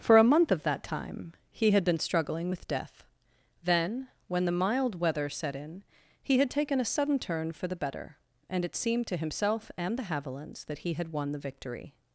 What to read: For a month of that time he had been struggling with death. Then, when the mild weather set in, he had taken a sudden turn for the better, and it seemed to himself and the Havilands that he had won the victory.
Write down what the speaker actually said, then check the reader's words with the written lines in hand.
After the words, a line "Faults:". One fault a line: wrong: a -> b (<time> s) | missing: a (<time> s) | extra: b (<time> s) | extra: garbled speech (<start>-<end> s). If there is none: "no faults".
For a month of that time he had been struggling with death. Then, when the mild weather set in, he had taken a sudden turn for the better, and it seemed to himself and the Havilands that he had won the victory.
Faults:
no faults